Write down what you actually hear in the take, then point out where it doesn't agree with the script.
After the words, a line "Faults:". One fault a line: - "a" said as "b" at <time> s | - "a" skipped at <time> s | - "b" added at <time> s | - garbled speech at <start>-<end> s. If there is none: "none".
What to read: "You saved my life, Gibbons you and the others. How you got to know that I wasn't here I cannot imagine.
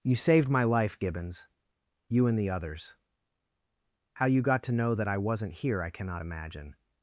"You saved my life, Gibbons you and the others. How you got to know that I wasn't here I cannot imagine.
Faults:
none